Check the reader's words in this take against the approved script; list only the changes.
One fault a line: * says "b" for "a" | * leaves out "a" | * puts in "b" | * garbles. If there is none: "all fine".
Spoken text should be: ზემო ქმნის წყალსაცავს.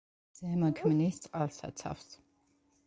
all fine